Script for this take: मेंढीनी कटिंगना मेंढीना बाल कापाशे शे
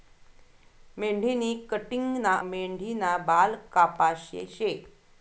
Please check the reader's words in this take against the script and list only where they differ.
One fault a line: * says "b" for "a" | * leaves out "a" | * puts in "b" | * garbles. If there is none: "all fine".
all fine